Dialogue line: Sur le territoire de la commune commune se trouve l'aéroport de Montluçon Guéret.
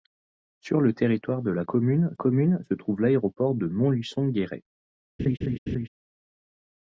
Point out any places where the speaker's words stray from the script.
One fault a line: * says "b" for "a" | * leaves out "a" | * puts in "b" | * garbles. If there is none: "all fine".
all fine